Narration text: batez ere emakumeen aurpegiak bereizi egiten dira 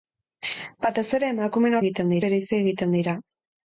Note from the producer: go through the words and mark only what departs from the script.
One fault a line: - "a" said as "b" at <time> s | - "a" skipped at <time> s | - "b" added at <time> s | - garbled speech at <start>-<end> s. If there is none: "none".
- "aurpegiak" said as "egiten" at 1.8 s